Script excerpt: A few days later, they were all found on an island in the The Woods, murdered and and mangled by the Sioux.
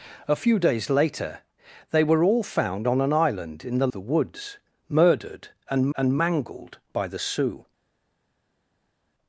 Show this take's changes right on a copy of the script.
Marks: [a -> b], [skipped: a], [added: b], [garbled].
A few days later, they were all found on an island in the The Woods, murdered and and mangled by the Sioux.